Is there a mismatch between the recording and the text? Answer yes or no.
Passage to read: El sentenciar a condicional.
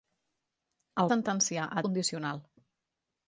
no